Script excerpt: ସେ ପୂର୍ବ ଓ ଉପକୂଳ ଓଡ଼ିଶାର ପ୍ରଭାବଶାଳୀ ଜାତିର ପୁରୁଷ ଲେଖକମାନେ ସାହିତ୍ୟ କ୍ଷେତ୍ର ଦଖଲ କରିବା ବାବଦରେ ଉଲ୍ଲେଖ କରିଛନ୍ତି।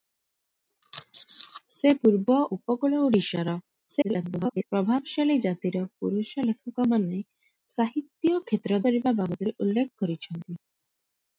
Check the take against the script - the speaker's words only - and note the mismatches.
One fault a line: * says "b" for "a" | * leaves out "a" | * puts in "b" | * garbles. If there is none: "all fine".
* leaves out "ଓ"
* garbles
* leaves out "ଦଖଲ"